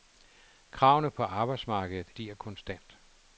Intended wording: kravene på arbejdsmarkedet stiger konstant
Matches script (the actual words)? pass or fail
pass